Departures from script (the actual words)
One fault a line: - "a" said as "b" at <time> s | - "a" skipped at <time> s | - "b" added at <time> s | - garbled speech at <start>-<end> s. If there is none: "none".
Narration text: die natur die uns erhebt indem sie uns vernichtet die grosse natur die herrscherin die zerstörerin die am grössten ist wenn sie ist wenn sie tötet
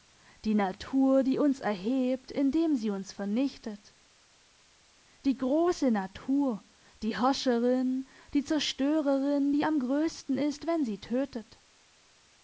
- "ist wenn sie" skipped at 11.0 s